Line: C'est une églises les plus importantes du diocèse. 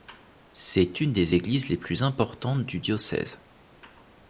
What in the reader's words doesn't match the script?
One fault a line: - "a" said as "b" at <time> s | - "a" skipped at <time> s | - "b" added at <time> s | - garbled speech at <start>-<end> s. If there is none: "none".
- "des" added at 1.1 s